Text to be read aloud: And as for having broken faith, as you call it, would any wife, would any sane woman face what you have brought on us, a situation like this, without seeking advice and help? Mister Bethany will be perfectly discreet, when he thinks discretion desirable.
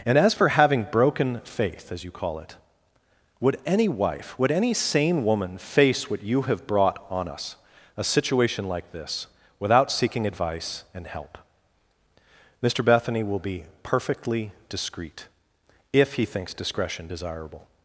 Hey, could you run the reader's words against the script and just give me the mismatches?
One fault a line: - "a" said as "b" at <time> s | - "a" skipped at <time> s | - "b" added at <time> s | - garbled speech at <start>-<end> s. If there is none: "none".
- "when" said as "if" at 15.9 s